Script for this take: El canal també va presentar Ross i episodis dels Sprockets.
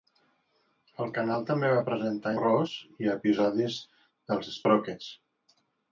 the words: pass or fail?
pass